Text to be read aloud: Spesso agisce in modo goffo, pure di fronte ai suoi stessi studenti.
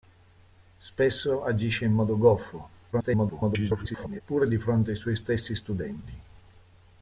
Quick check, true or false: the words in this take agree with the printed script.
false